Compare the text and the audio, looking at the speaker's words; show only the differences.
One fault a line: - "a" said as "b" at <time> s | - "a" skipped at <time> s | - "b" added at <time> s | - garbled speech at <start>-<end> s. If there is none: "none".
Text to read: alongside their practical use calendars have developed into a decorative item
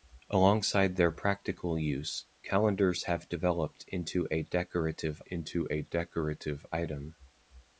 - "into a decorative" added at 5.3 s